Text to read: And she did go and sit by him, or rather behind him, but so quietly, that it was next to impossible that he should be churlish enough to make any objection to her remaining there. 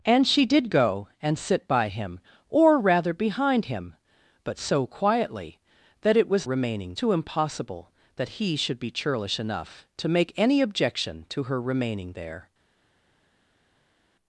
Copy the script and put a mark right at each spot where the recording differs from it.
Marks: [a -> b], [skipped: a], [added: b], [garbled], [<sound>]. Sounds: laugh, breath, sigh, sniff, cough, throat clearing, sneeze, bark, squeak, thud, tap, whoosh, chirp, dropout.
And she did go and sit by him, or rather behind him, but so quietly, that it was [next -> remaining] to impossible that he should be churlish enough to make any objection to her remaining there.